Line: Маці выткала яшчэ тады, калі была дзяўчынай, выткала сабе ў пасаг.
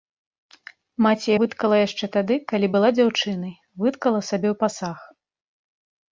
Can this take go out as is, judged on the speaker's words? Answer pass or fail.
pass